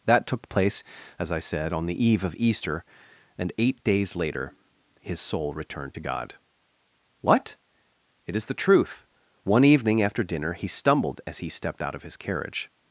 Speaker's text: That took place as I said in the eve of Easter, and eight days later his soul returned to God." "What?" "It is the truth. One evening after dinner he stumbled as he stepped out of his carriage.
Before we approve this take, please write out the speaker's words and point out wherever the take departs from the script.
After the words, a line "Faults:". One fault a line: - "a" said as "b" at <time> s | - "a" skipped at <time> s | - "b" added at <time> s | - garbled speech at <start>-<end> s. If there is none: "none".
That took place as I said on the eve of Easter, and eight days later his soul returned to God." "What?" "It is the truth. One evening after dinner he stumbled as he stepped out of his carriage.
Faults:
- "in" said as "on" at 1.7 s